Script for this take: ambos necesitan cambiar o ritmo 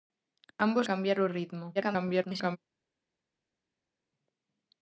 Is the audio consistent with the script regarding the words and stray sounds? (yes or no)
no